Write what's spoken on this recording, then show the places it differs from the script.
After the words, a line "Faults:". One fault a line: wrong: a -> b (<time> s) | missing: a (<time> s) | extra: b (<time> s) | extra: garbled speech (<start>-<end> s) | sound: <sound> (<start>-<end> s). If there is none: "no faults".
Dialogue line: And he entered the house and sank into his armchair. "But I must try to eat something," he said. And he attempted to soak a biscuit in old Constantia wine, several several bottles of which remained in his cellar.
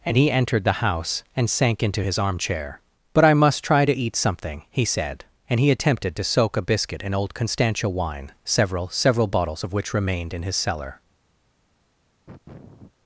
And he entered the house and sank into his armchair. "But I must try to eat something," he said. And he attempted to soak a biscuit in old Constantia wine, several several bottles of which remained in his cellar.
Faults:
sound: sniff (12.3-12.9 s)